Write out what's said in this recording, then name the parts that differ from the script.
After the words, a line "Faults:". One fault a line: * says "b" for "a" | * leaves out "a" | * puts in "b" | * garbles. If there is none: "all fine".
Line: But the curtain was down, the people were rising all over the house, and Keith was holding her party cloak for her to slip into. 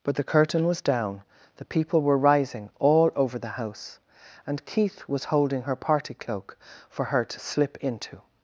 But the curtain was down, the people were rising all over the house, and Keith was holding her party cloak for her to slip into.
Faults:
all fine